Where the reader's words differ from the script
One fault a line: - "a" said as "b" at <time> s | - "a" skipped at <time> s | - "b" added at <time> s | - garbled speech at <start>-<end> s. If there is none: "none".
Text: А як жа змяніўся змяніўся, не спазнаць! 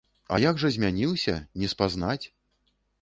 - "змяніўся" skipped at 1.3 s